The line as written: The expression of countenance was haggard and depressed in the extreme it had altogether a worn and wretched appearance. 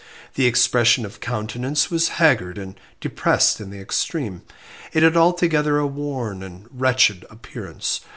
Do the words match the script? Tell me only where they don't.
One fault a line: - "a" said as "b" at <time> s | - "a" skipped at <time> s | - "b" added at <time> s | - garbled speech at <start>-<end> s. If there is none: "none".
none